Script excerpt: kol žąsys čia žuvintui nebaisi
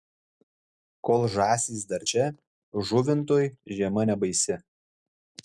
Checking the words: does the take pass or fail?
fail